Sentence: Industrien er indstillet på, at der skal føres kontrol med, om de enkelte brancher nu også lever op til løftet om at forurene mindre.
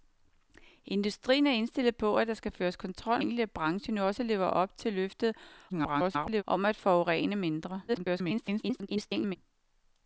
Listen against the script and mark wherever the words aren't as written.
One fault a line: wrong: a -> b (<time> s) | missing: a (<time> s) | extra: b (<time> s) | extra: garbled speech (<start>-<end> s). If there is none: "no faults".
missing: med om de (3.2 s)
extra: garbled speech (5.7-6.4 s)
extra: garbled speech (7.9-9.4 s)